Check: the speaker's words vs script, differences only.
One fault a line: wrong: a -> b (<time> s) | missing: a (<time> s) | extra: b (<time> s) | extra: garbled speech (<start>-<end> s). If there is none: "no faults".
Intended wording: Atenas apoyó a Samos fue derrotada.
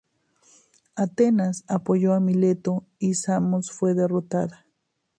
extra: Mileto y (2.2 s)